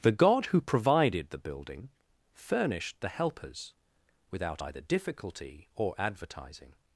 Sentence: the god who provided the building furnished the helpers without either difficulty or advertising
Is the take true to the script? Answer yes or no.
yes